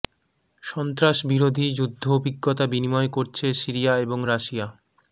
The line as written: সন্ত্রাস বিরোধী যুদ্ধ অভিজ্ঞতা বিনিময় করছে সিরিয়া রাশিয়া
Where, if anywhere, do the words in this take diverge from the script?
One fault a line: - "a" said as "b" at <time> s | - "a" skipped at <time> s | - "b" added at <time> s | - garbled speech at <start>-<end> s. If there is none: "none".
- "এবং" added at 4.0 s